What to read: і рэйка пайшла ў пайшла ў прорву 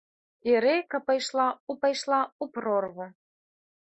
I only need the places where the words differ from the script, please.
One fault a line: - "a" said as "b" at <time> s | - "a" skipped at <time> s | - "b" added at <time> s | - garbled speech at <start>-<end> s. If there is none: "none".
none